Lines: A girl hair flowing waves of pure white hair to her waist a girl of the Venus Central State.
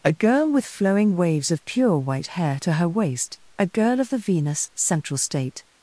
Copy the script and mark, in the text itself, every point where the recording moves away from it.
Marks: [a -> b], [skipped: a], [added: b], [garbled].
A girl [hair -> with] flowing waves of pure white hair to her waist a girl of the Venus Central State.